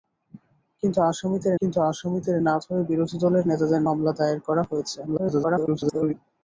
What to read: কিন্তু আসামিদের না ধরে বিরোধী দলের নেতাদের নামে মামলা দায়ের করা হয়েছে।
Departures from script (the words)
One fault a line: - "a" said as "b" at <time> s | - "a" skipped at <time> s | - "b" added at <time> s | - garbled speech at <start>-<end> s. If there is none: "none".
- "কিন্তু আসামিদের" added at 1.6 s
- "নামে" skipped at 3.8 s
- garbled speech at 5.1-6.1 s